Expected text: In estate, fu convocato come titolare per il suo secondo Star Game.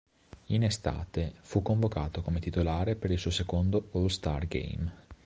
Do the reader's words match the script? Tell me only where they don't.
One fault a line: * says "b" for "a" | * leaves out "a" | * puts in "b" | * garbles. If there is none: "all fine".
* puts in "All"